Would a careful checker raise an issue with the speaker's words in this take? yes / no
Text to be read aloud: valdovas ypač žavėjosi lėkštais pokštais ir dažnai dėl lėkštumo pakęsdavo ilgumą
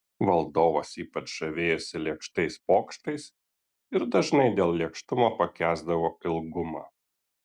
no